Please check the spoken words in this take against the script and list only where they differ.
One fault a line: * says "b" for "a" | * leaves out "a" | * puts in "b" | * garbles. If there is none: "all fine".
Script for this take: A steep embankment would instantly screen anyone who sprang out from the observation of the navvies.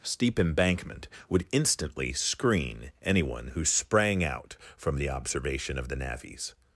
* leaves out "A"